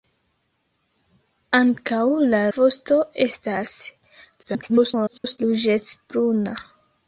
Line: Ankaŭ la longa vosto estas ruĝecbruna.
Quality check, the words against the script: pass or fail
fail